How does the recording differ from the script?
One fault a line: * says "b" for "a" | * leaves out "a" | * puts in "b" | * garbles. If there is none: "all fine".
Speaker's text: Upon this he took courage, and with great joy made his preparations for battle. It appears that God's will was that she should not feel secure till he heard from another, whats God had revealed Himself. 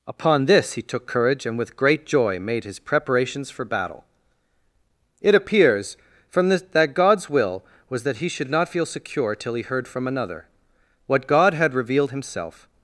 * puts in "from this"
* says "he" for "she"
* says "what" for "whats"